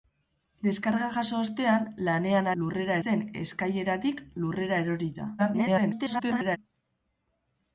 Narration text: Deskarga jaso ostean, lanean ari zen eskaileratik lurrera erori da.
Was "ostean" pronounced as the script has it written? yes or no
yes